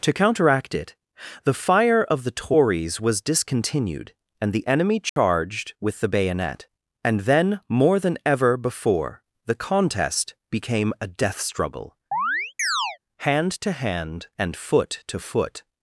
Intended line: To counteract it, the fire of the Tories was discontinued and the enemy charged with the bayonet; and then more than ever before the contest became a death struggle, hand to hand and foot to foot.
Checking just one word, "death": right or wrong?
right